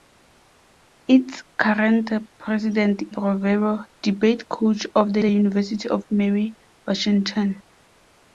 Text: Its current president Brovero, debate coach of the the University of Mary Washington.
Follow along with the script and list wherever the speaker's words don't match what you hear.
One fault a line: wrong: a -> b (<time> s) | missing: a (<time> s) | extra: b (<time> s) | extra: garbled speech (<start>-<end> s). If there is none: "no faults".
no faults